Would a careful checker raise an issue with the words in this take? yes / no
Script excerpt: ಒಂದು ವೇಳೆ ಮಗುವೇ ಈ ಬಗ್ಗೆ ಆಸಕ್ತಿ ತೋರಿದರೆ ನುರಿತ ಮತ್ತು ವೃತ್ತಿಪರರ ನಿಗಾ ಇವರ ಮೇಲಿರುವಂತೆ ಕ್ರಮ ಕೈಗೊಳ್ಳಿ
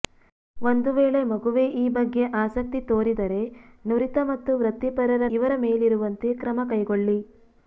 yes